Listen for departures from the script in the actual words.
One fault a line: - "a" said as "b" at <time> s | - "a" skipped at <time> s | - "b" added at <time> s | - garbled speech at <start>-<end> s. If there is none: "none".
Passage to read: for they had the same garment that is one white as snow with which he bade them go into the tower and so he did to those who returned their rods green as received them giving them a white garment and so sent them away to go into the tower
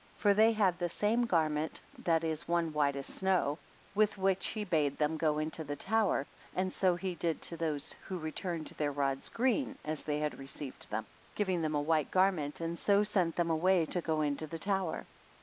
- "they had" added at 10.0 s